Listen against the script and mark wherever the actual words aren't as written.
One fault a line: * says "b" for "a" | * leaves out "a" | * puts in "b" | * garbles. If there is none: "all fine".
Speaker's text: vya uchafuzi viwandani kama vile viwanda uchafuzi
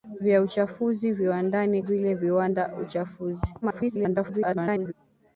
* leaves out "kama"
* garbles